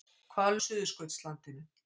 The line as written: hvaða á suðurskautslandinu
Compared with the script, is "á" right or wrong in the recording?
right